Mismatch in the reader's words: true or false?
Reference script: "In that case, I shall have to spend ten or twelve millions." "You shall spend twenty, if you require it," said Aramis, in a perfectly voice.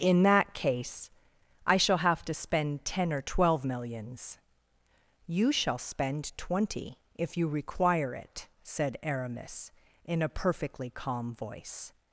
true